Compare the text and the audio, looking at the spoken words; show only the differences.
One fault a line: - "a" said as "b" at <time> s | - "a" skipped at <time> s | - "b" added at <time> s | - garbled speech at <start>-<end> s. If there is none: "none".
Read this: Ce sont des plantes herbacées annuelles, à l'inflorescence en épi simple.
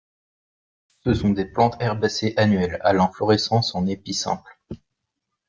none